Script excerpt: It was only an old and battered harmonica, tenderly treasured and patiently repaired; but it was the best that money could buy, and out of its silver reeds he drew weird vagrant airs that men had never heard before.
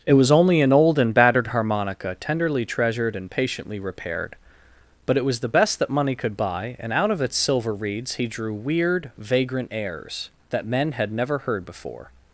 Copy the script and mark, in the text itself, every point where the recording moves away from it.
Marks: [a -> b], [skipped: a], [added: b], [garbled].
It was only an old and battered harmonica, tenderly treasured and patiently repaired; but it was the best that money could buy, and out of its silver reeds he drew weird vagrant airs that men had never heard before.